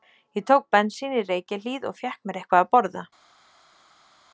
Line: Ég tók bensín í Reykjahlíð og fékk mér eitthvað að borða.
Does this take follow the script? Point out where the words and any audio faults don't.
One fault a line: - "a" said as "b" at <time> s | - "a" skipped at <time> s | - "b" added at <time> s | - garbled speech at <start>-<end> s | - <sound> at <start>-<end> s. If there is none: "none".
none